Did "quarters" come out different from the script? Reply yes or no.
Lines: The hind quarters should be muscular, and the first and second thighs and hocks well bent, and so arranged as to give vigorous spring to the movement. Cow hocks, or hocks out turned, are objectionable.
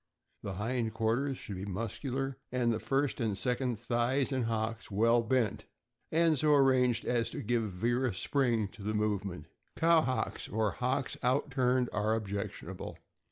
no